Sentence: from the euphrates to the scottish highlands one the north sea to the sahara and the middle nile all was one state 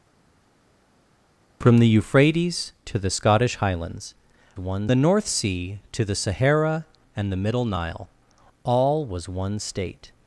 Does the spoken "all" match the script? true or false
true